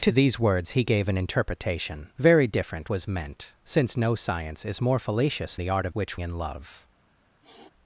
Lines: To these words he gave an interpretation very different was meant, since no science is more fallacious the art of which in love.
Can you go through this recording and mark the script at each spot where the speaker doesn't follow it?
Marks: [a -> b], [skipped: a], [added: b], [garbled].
To these words he gave an interpretation very different was meant, since no science is more fallacious the art of which in love.